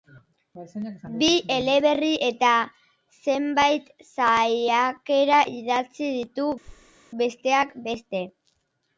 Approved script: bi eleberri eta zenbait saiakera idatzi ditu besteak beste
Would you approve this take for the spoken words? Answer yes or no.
yes